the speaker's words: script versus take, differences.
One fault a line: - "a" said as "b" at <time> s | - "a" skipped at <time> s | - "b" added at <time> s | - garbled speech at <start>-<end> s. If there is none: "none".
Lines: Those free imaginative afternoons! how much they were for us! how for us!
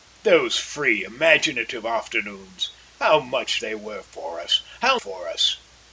none